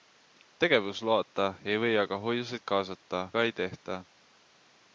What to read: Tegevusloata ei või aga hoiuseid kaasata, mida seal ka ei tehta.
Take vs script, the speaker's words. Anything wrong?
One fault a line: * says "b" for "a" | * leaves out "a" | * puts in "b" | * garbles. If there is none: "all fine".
* leaves out "mida seal"